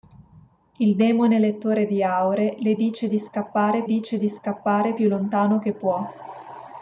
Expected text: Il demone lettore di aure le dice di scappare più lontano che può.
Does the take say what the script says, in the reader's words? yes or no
no